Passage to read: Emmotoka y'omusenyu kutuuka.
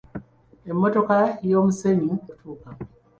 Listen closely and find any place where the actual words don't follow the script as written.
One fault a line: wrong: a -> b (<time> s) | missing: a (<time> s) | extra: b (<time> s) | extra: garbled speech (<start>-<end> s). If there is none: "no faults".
no faults